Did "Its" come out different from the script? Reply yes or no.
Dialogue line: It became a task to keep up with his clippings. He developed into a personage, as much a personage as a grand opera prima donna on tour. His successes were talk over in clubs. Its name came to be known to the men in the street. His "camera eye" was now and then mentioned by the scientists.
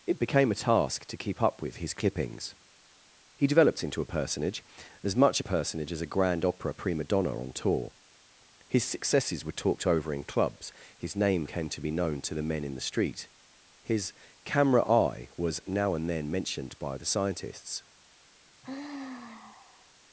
yes